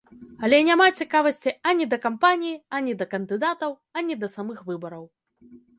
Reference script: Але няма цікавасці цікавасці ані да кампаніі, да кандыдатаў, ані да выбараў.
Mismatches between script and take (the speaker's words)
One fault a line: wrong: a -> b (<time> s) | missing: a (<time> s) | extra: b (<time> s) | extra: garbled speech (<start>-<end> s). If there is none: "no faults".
missing: цікавасці (1.5 s)
extra: ані (2.8 s)
extra: самых (4.4 s)